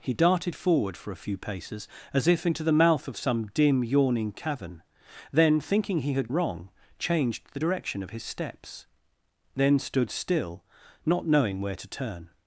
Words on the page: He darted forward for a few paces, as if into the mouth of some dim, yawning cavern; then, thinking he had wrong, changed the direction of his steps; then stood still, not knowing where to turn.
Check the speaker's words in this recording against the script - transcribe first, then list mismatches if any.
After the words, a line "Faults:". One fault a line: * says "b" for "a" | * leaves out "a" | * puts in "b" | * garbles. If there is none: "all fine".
He darted forward for a few paces, as if into the mouth of some dim, yawning cavern; then, thinking he had wrong, changed the direction of his steps; then stood still, not knowing where to turn.
Faults:
all fine